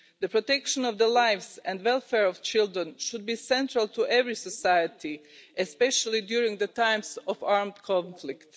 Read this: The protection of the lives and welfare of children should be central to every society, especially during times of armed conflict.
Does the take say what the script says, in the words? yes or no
yes